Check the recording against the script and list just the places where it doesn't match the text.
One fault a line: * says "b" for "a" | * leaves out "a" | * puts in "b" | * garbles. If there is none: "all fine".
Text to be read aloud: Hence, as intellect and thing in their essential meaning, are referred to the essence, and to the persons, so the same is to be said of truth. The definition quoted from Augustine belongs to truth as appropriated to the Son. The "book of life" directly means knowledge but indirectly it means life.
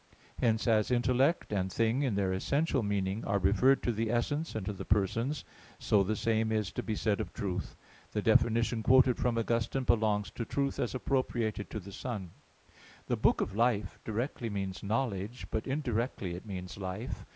all fine